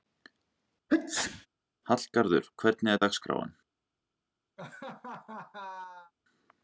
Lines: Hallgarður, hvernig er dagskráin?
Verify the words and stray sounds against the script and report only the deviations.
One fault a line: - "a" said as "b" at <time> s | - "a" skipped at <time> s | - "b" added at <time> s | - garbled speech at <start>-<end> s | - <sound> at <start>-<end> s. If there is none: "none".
- sneeze at 0.9-1.5 s
- laugh at 4.6-6.1 s